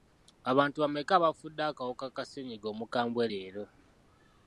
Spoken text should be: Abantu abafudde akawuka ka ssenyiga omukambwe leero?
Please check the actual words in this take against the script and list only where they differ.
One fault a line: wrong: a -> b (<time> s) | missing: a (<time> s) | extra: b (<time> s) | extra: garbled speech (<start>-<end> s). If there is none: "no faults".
extra: bameka (0.8 s)